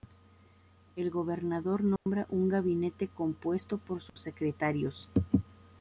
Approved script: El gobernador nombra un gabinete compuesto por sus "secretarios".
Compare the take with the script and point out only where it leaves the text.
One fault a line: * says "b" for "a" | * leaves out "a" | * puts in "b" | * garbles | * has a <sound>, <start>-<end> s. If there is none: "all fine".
* has a dropout, 2.0-2.1 s
* has a dropout, 4.1-4.2 s